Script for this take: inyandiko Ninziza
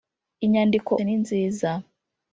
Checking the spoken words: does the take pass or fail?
pass